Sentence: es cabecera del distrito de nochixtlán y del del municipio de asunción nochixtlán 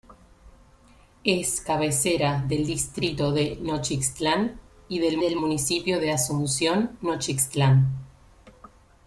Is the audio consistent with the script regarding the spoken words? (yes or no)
yes